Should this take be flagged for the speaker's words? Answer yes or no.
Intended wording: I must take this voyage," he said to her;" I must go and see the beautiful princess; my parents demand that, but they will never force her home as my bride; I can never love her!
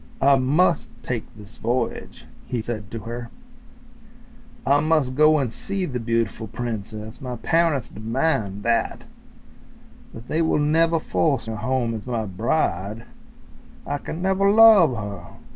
no